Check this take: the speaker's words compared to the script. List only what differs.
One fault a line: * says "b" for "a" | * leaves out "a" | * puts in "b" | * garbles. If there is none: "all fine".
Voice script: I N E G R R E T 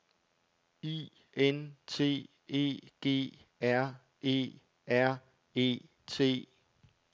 * puts in "T"
* puts in "E"